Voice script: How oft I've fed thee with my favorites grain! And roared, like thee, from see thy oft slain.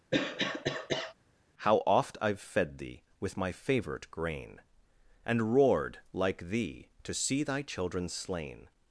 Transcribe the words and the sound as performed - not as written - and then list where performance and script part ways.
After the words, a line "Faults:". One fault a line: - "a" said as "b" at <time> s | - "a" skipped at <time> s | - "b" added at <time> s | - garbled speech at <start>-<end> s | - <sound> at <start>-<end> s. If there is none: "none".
How oft I've fed thee with my favorite grain! And roared, like thee, to see thy children slain.
Faults:
- cough at 0.1-1.1 s
- "favorites" said as "favorite" at 3.5 s
- "from" said as "to" at 7.0 s
- "oft" said as "children" at 7.6 s